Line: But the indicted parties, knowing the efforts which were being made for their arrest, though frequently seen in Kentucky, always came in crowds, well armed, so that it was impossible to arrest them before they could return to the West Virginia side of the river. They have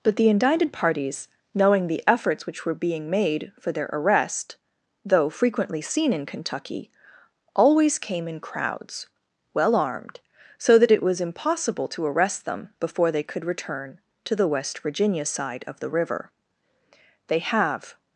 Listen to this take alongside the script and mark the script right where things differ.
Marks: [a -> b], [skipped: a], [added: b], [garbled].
But the indicted parties, knowing the efforts which were being made for their arrest, though frequently seen in Kentucky, always came in crowds, well armed, so that it was impossible to arrest them before they could return to the West Virginia side of the river. They have